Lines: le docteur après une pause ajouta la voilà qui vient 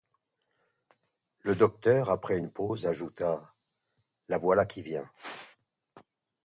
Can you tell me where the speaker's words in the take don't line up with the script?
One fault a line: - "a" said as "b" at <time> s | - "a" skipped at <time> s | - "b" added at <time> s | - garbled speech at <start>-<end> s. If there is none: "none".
none